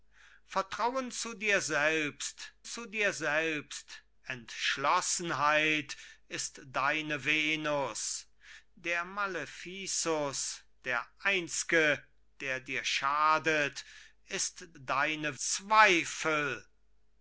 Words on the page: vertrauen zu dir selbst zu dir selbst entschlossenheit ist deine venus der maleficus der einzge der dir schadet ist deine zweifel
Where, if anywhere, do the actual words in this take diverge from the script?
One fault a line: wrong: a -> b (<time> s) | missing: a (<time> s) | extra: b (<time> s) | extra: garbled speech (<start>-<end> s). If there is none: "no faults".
no faults